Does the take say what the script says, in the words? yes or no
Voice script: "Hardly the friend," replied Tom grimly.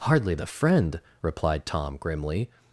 yes